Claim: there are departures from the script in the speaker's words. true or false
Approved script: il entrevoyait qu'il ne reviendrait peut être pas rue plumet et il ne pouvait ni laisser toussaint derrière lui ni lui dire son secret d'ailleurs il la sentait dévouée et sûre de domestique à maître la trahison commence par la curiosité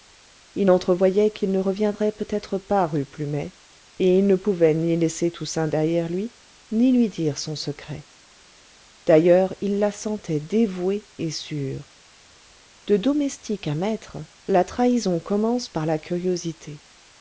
false